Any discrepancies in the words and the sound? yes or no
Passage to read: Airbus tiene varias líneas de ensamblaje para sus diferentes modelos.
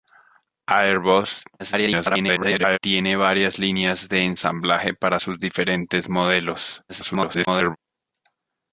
yes